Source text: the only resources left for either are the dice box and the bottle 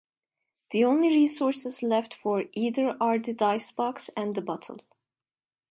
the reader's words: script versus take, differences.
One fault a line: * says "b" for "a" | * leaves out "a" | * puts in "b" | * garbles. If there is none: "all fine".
all fine